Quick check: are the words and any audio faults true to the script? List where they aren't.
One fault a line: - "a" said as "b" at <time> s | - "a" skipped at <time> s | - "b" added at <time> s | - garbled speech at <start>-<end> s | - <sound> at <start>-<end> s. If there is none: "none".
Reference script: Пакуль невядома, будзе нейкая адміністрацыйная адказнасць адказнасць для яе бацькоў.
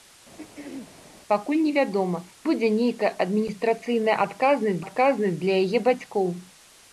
- throat clearing at 0.4-0.9 s